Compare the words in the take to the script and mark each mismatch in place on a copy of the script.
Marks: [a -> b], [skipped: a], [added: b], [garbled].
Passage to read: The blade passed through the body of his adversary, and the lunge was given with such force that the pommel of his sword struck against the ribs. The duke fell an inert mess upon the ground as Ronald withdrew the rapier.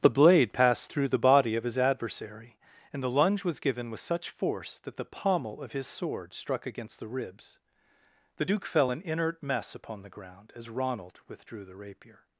The blade passed through the body of his adversary, and the lunge was given with such force that the pommel of his sword struck against the ribs. The duke fell an inert mess upon the ground as Ronald withdrew the rapier.